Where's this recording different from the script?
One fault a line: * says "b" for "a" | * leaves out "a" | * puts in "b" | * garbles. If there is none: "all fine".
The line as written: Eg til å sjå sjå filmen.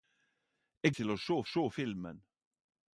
all fine